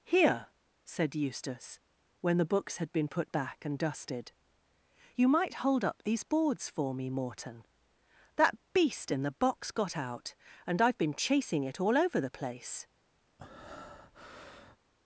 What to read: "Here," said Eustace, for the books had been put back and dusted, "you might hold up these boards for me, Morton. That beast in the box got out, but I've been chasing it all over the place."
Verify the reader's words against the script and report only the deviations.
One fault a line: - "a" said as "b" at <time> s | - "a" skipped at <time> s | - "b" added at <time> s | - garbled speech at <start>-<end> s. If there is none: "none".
- "for" said as "when" at 2.2 s
- "but" said as "and" at 10.6 s